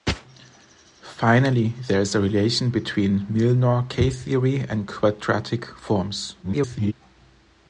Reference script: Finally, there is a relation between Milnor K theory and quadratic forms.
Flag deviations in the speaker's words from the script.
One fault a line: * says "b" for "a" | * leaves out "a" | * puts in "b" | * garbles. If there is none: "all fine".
* garbles